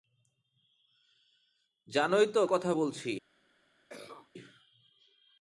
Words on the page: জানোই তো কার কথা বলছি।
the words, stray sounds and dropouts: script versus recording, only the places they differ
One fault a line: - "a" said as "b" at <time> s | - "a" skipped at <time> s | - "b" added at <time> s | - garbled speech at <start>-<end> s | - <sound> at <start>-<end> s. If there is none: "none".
- "কার" skipped at 2.4 s
- cough at 3.9-4.3 s